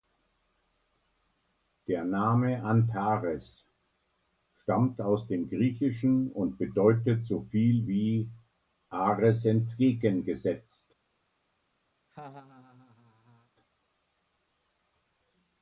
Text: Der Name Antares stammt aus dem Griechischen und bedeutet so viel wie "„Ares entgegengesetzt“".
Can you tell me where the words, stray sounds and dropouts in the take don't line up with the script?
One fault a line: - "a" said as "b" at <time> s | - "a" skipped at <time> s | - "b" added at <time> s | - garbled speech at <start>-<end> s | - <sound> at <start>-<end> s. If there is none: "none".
- laugh at 12.0-13.5 s